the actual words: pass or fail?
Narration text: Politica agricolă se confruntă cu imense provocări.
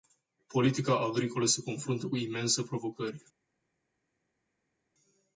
pass